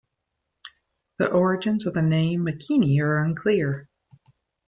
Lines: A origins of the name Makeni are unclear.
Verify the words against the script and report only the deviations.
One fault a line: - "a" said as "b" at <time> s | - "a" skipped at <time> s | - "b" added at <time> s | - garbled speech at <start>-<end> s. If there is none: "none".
- "A" said as "The" at 1.2 s